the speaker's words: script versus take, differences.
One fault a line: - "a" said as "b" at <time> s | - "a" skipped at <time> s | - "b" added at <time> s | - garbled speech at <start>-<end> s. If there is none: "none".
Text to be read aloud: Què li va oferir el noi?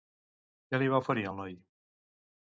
none